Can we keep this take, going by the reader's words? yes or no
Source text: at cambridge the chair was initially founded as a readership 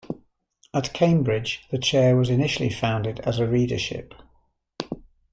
yes